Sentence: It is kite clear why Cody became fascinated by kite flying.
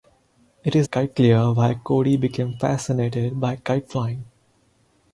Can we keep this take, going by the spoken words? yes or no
yes